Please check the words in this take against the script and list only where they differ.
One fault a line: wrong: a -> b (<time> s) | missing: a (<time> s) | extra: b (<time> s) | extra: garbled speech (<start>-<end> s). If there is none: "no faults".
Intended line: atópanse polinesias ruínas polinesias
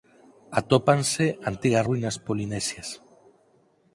wrong: polinesias -> antigas (1.5 s)